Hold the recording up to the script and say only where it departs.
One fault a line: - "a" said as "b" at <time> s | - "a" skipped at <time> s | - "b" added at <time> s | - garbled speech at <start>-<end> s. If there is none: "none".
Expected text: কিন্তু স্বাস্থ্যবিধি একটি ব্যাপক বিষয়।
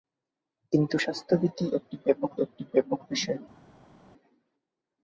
- "একটি ব্যাপক" added at 2.4 s